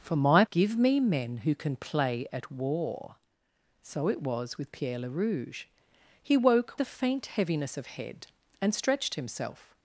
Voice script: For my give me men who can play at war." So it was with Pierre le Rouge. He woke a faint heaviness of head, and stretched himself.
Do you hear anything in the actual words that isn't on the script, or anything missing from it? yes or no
no